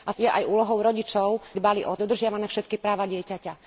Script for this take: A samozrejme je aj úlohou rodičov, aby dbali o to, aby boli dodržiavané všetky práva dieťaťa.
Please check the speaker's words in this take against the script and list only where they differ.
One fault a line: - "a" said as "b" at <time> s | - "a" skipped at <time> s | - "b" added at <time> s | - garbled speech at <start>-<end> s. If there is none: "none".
- "samozrejme" skipped at 0.1 s
- "aby" skipped at 1.3 s
- "to aby boli" skipped at 2.0 s